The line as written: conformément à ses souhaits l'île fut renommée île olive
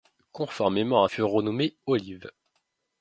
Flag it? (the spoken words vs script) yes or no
yes